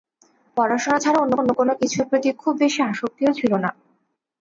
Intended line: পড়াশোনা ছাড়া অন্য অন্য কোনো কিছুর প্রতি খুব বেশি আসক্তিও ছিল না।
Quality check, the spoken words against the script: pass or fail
pass